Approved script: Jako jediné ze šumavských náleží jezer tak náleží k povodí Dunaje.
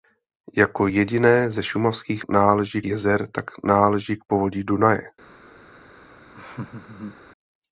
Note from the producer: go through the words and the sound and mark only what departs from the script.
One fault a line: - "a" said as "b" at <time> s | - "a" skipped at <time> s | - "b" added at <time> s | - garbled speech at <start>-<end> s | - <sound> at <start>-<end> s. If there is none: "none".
- laugh at 6.3-7.2 s